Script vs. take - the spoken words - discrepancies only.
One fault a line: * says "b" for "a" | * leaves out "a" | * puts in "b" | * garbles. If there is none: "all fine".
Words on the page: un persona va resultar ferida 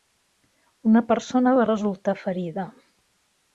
* says "una" for "un"